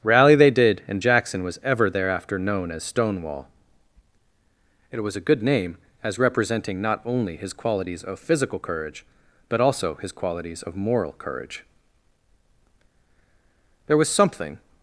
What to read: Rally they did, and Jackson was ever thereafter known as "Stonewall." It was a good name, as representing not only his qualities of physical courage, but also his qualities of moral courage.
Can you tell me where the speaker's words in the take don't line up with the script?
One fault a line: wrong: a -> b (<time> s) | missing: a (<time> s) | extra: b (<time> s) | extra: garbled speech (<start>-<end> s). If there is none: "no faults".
extra: There was something (13.9 s)